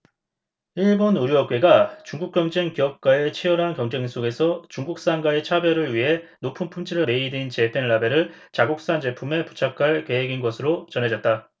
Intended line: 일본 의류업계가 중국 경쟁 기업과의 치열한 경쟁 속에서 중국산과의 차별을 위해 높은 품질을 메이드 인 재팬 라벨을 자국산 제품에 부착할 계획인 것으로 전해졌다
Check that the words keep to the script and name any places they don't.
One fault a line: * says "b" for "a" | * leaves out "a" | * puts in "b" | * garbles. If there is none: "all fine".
all fine